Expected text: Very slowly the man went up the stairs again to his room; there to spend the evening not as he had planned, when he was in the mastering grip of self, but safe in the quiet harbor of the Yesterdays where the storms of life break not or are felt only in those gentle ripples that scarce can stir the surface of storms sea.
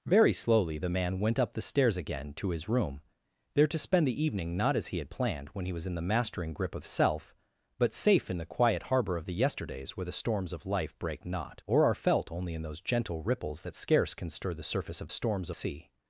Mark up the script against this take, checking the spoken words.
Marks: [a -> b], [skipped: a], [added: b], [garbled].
Very slowly the man went up the stairs again to his room; there to spend the evening not as he had planned, when he was in the mastering grip of self, but safe in the quiet harbor of the Yesterdays where the storms of life break not or are felt only in those gentle ripples that scarce can stir the surface of storms sea.